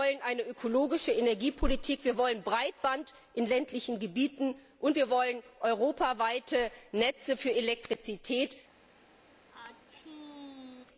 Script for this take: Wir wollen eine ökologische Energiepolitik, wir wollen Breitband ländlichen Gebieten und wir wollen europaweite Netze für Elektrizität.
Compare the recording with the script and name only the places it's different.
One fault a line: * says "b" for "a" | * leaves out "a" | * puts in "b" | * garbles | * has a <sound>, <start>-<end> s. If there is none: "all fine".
* puts in "in"
* has a sneeze, 9.5-10.9 s